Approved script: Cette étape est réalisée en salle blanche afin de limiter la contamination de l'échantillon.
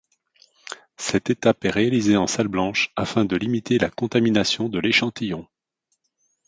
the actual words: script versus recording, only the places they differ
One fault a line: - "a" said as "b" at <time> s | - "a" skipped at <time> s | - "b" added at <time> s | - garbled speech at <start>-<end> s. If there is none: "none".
none